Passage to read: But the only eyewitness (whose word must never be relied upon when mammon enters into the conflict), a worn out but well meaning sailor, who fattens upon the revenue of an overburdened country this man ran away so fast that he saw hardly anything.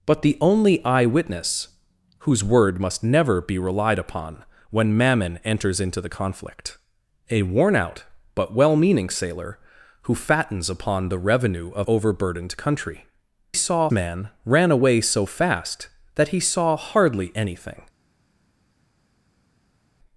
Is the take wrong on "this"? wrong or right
wrong